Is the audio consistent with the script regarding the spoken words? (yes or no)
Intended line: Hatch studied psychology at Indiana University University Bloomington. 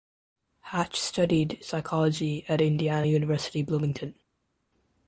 no